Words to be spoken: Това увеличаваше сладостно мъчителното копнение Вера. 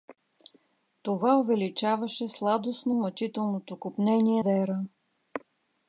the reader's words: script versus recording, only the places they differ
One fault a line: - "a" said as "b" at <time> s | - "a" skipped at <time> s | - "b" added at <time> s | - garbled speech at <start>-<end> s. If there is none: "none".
none